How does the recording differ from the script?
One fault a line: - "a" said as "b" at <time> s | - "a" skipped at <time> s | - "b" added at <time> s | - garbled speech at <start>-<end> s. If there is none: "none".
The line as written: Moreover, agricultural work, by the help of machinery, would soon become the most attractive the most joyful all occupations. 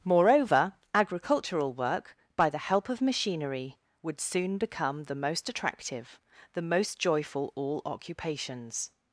none